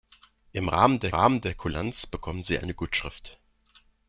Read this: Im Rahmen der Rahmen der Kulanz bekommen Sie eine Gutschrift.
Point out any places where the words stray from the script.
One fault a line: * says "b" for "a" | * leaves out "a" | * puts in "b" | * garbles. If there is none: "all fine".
all fine